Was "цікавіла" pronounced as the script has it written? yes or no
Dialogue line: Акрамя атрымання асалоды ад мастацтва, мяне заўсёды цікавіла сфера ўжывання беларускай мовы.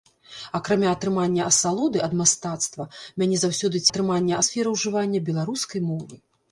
no